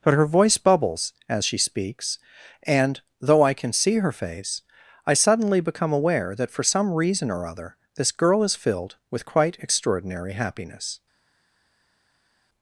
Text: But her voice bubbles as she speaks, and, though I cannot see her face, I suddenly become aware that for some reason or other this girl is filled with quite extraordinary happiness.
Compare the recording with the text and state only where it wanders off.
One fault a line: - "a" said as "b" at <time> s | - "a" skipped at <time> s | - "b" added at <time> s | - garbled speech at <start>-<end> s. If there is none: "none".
- "cannot" said as "can" at 3.5 s